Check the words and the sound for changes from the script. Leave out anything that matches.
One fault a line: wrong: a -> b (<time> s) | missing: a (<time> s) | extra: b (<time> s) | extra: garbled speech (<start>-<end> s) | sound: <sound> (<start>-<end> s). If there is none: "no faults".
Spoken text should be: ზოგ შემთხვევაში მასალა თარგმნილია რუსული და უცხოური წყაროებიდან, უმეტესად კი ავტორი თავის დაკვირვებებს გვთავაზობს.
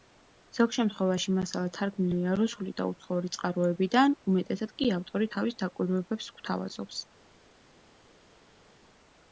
no faults